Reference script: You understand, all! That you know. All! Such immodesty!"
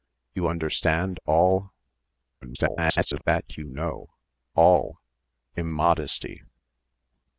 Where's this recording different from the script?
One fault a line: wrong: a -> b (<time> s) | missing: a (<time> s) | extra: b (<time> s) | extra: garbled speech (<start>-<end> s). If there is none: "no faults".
extra: garbled speech (2.4-3.2 s)
missing: Such (5.0 s)